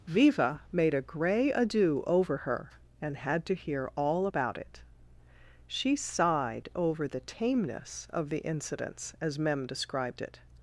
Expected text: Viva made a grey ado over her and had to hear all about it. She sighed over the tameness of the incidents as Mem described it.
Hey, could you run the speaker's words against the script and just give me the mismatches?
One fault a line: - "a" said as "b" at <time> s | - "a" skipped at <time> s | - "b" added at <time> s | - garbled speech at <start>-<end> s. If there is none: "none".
none